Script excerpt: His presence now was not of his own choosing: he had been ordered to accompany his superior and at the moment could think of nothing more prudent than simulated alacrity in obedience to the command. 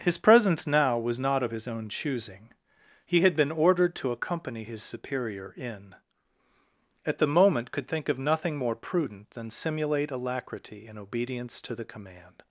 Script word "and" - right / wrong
wrong